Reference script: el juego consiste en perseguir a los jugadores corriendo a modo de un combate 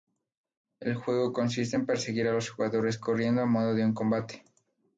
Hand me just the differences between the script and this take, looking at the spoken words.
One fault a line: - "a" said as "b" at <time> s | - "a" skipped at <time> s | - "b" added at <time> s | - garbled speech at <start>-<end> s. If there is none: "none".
none